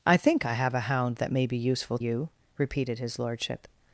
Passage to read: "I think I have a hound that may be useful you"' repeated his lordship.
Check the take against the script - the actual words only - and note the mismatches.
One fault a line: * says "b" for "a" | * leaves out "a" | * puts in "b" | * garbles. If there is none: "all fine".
all fine